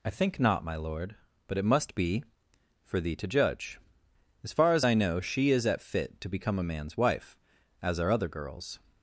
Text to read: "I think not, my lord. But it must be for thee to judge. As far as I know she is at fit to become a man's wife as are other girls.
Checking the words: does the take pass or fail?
pass